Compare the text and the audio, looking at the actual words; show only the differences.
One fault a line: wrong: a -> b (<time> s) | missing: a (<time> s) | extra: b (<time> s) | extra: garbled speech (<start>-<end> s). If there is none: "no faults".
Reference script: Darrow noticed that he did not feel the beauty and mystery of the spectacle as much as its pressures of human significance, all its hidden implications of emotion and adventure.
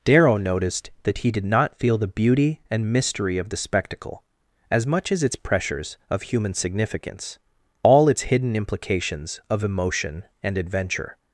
no faults